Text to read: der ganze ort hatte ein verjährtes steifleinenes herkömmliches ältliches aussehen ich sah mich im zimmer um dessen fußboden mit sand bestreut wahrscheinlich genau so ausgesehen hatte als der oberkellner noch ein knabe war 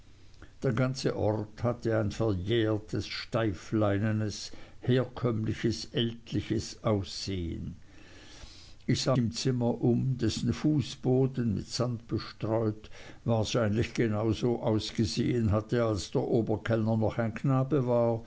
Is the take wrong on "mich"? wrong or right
wrong